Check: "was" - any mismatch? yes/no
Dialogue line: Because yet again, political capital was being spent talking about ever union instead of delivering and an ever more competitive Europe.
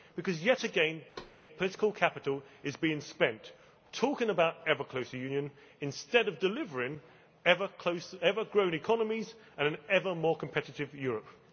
yes